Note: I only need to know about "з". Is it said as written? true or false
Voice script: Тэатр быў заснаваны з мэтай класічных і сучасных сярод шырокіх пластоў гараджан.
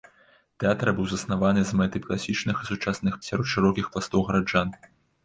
true